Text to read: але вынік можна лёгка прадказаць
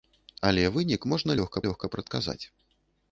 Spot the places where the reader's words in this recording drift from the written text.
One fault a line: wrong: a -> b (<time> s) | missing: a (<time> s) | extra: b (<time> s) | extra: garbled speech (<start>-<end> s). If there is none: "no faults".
extra: лёгка (1.7 s)